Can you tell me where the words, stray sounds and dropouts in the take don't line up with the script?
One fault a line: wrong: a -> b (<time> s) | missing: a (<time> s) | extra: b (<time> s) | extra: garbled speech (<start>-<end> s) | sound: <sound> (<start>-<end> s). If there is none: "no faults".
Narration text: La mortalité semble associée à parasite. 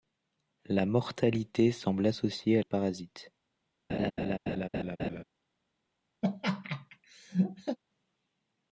sound: laugh (3.9-5.2 s)
sound: laugh (6.2-7.8 s)